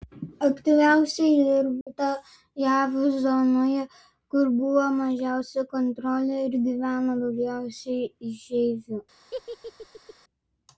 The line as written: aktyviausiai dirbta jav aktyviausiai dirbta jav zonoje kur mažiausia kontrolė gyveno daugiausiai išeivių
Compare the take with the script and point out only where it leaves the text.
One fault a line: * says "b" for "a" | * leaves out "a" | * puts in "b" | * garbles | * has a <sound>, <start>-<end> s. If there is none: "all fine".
* has a dropout, 1.8-1.9 s
* leaves out "aktyviausiai dirbta jav"
* puts in "buvo"
* puts in "ir"
* has a laugh, 9.3-10.1 s